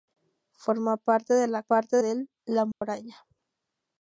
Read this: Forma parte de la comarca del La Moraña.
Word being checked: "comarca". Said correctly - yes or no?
no